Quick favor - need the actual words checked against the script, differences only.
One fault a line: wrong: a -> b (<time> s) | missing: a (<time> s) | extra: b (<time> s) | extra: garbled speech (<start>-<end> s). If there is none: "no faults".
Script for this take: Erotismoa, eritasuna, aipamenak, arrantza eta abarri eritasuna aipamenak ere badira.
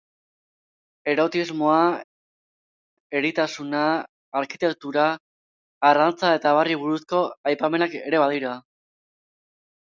wrong: aipamenak -> arkitektura (4.4 s)
wrong: eritasuna -> buruzko (6.8 s)